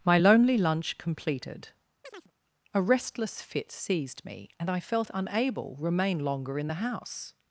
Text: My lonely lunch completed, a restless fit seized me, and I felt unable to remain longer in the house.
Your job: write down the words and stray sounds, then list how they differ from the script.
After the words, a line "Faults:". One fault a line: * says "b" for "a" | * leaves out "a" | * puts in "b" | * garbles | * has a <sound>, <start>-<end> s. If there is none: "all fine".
My lonely lunch completed, a restless fit seized me, and I felt unable remain longer in the house.
Faults:
* has a chirp, 2.0-2.3 s
* leaves out "to"